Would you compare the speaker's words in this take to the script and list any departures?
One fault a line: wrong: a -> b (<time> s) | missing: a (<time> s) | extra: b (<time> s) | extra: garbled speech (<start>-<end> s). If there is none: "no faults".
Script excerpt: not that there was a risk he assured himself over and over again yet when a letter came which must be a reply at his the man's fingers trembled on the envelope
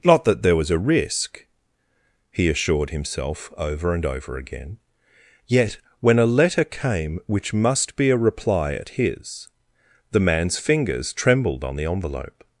no faults